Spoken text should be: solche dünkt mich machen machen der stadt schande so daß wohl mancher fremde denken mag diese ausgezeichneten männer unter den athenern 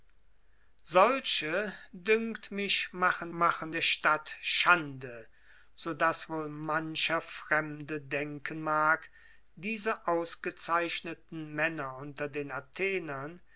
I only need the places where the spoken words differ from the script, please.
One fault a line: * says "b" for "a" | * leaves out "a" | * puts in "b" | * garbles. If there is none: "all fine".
all fine